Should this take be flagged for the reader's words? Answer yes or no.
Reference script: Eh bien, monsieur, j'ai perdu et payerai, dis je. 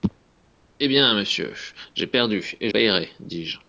no